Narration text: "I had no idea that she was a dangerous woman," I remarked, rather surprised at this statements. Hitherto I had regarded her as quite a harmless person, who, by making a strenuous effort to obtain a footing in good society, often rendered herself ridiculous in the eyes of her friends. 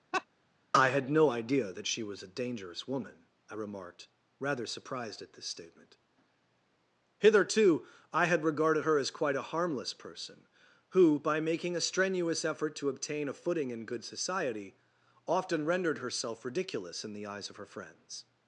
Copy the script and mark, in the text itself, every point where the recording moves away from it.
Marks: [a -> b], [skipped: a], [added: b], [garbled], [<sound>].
[laugh] "I had no idea that she was a dangerous woman," I remarked, rather surprised at this [statements. -> statement] Hitherto I had regarded her as quite a harmless person, who, by making a strenuous effort to obtain a footing in good society, often rendered herself ridiculous in the eyes of her friends.